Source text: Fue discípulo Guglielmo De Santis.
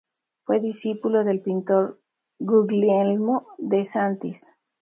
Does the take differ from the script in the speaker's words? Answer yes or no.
yes